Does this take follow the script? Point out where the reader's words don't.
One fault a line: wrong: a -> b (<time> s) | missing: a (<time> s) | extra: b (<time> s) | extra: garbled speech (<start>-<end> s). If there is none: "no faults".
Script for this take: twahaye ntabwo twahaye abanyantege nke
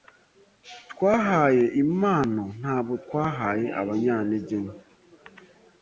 extra: impano (1.8 s)